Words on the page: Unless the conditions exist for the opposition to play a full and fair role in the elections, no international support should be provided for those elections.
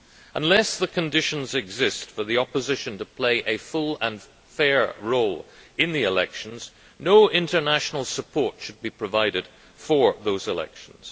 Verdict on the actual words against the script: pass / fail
pass